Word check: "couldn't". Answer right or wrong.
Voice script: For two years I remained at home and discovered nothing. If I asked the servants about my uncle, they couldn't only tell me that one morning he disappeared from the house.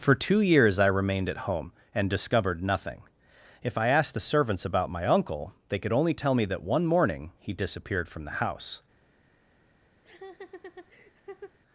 wrong